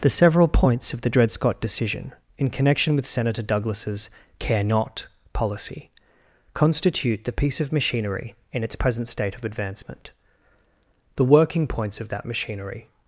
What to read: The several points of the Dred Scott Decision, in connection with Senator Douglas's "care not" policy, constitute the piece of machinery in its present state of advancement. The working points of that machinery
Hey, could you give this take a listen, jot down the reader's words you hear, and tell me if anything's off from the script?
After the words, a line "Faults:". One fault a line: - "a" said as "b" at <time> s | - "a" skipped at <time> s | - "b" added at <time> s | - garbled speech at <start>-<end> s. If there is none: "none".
The several points of the Dred Scott Decision, in connection with Senator Douglas's "care not" policy, constitute the piece of machinery in its present state of advancement. The working points of that machinery
Faults:
none